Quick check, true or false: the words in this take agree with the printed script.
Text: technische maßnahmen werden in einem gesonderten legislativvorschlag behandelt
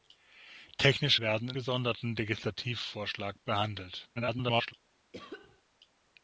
false